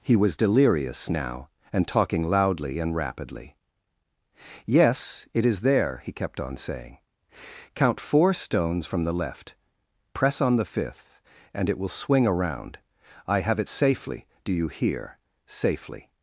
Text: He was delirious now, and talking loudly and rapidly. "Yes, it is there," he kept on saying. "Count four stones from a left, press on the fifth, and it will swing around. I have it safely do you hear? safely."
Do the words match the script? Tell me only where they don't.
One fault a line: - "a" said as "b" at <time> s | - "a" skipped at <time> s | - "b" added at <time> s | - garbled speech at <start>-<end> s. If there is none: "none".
- "a" said as "the" at 9.0 s